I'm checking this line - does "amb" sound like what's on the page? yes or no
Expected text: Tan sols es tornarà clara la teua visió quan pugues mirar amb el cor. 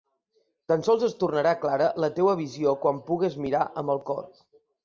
yes